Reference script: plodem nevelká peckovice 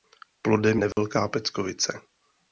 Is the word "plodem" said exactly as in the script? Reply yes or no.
yes